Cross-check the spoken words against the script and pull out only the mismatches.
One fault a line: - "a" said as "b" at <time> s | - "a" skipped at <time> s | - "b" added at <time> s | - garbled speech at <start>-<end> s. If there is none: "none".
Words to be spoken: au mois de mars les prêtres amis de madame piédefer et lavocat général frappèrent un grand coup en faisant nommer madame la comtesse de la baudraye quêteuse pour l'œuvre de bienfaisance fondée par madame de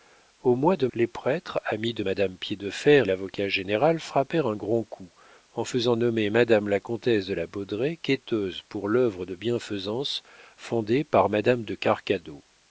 - "mars" skipped at 0.9 s
- "et" skipped at 3.1 s